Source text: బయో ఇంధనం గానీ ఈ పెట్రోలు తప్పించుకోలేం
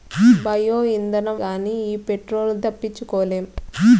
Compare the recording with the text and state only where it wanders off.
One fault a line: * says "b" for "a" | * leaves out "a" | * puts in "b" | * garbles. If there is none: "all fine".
all fine